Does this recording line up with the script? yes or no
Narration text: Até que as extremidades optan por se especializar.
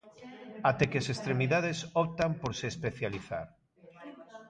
yes